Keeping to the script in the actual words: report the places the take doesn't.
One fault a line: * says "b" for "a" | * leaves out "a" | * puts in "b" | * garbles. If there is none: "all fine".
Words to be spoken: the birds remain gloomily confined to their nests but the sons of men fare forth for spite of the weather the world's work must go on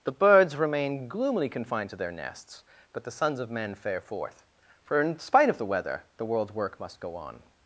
* puts in "in"